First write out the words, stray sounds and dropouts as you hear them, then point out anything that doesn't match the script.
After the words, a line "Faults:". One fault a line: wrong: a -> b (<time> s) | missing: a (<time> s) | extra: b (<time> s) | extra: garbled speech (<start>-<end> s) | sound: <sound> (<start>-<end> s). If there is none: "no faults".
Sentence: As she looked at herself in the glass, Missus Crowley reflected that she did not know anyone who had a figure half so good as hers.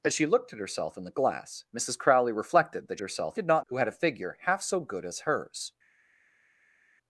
As she looked at herself in the glass, Missus Crowley reflected that herself did not who had a figure half so good as hers.
Faults:
wrong: she -> herself (3.0 s)
missing: know anyone (3.7 s)